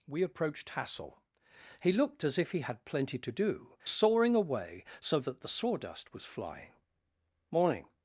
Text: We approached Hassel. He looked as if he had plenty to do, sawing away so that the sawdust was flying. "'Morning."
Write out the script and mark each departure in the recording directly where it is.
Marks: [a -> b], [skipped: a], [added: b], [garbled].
We approached Hassel. He looked as if he had plenty to do, sawing away so that the sawdust was flying. "'Morning."